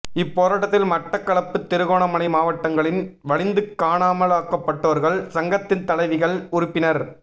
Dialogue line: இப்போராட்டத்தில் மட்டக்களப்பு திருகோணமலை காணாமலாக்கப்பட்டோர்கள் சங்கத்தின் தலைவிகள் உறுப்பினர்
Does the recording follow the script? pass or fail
fail